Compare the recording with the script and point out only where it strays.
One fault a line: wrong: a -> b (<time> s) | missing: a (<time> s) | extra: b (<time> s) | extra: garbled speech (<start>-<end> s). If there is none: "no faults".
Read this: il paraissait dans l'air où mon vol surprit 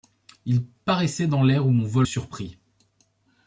no faults